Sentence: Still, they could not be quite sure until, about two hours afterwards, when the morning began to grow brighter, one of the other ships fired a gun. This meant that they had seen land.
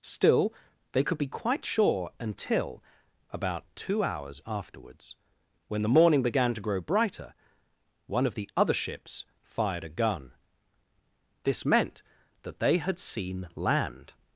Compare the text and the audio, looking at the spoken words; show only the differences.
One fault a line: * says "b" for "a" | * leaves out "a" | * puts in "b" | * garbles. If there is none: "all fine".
* leaves out "not"